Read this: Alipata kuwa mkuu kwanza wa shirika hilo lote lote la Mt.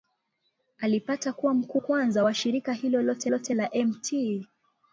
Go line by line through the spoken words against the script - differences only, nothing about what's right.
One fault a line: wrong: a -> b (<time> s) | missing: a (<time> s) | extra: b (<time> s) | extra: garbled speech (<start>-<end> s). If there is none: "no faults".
no faults